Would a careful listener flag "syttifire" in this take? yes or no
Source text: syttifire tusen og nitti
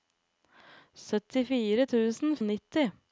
no